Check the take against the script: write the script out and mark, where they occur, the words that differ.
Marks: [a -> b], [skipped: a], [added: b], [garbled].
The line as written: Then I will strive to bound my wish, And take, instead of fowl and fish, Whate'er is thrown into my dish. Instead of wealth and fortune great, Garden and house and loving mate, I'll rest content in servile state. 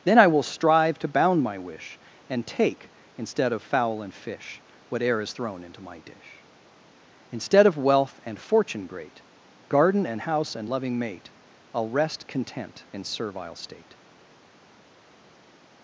Then I will strive to bound my wish, And take, instead of fowl and fish, Whate'er is thrown into my dish. Instead of wealth and fortune great, Garden and house and loving mate, I'll rest content in servile state.